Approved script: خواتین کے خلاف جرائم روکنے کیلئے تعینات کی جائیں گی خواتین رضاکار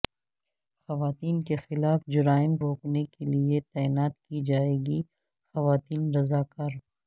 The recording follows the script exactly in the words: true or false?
true